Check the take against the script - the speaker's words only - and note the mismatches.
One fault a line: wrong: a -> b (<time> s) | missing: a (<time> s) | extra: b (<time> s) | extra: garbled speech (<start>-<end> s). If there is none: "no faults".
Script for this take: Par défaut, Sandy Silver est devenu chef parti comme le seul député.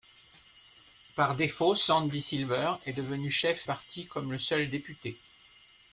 no faults